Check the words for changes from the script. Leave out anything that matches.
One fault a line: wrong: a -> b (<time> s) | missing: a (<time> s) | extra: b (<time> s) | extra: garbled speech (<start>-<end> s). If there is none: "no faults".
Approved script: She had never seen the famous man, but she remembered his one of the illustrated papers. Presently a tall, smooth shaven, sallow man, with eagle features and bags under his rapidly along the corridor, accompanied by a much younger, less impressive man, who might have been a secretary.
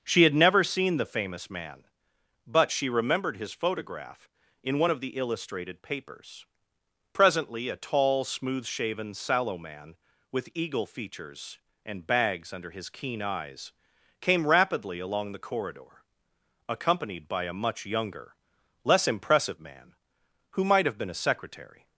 extra: photograph in (3.5 s)
extra: keen eyes came (12.9 s)